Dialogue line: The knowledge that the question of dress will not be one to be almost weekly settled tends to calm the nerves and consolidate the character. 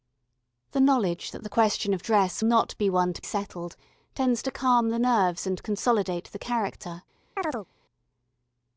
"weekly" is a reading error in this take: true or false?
true